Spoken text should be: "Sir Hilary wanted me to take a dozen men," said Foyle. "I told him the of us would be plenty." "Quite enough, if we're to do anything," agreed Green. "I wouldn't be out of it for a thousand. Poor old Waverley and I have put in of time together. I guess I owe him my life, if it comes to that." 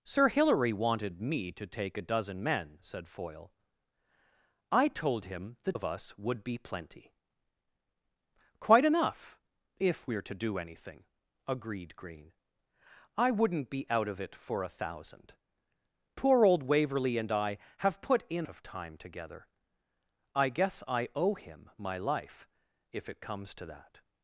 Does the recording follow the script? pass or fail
pass